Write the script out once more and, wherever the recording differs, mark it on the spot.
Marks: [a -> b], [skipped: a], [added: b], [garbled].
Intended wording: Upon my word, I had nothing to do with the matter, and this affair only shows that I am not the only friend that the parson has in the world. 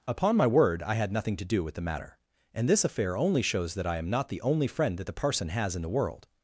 Upon my word, I had nothing to do with the matter, and this affair only shows that I am not the only friend that the parson has in the world.